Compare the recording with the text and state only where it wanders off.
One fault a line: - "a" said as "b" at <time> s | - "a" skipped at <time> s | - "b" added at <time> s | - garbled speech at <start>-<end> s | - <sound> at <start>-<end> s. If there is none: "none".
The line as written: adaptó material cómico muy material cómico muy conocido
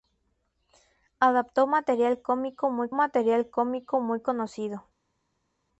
none